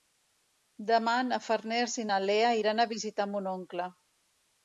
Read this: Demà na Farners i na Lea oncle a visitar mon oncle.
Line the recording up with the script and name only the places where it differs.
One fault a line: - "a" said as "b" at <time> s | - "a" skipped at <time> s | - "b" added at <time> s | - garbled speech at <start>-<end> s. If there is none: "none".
- "oncle" said as "iran" at 2.6 s